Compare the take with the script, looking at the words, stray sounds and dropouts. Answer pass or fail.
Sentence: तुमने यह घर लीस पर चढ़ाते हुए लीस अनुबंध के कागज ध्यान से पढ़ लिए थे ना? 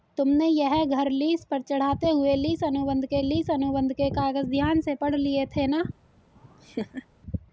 fail